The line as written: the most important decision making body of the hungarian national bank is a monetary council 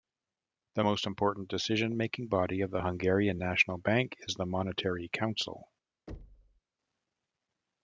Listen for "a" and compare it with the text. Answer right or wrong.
wrong